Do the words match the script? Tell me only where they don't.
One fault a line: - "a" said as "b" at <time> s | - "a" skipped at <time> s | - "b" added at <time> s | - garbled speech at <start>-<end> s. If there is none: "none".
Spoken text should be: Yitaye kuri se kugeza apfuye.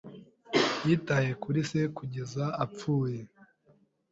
none